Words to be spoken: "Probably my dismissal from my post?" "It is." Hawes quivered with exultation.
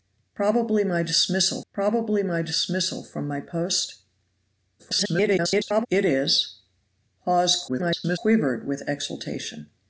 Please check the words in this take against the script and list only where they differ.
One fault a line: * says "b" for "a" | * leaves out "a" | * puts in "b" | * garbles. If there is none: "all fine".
* puts in "probably my dismissal"
* garbles
* garbles